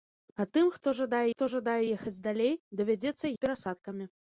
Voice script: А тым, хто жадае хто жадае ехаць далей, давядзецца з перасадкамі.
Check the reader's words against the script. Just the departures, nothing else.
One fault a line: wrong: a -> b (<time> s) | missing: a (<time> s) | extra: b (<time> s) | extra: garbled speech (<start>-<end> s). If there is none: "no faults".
no faults